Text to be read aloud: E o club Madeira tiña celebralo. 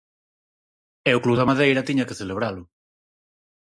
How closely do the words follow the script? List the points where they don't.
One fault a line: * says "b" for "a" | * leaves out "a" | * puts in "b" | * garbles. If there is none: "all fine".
* puts in "da"
* puts in "que"